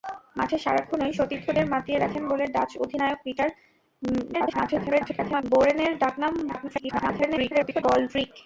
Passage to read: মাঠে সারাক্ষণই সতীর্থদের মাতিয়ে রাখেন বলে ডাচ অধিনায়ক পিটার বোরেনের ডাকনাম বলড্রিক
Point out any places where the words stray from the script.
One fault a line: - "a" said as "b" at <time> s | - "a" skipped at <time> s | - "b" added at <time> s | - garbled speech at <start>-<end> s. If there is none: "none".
- garbled speech at 4.3-5.4 s
- garbled speech at 6.5-7.8 s